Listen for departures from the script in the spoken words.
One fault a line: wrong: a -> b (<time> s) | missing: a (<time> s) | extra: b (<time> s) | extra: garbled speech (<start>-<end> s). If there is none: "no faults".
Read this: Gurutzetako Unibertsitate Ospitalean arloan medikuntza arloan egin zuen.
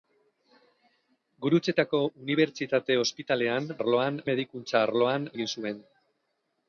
no faults